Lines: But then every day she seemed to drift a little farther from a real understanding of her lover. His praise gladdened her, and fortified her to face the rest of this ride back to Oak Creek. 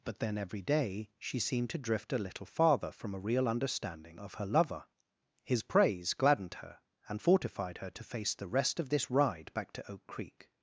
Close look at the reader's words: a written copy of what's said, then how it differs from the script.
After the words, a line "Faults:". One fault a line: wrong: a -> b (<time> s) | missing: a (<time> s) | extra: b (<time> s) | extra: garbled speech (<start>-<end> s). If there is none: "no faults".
But then every day she seemed to drift a little farther from a real understanding of her lover. His praise gladdened her, and fortified her to face the rest of this ride back to Oak Creek.
Faults:
no faults